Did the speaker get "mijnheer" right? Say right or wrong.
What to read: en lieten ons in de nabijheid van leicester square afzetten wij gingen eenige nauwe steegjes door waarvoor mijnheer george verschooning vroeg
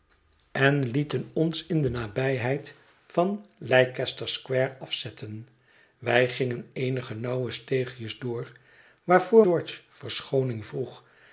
wrong